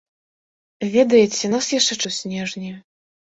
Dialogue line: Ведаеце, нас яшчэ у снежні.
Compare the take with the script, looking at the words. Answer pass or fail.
pass